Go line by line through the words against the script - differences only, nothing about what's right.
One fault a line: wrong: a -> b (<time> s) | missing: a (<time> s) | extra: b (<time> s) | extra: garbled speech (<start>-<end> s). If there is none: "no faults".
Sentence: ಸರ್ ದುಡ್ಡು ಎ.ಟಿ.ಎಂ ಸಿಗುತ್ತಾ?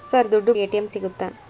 no faults